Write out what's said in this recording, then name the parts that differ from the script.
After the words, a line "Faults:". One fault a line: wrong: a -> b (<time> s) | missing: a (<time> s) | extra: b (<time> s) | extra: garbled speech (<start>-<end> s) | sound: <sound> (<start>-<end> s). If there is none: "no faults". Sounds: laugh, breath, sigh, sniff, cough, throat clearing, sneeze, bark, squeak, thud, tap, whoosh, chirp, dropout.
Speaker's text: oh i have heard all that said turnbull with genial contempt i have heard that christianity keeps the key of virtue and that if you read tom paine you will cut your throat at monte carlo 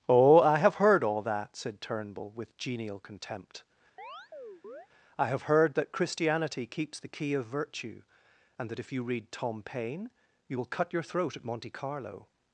oh i have heard all that said turnbull with genial contempt i have heard that christianity keeps the key of virtue and that if you read tom paine you will cut your throat at monte carlo
Faults:
sound: chirp (4.0-4.9 s)